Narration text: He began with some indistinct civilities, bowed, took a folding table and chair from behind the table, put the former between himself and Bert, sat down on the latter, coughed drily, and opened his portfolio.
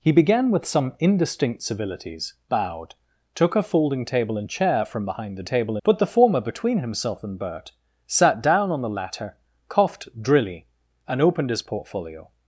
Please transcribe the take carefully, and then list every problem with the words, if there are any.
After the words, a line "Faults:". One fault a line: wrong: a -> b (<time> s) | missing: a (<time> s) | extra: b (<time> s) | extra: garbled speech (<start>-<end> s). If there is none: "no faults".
He began with some indistinct civilities, bowed, took a folding table and chair from behind the table, put the former between himself and Bert, sat down on the latter, coughed drily, and opened his portfolio.
Faults:
no faults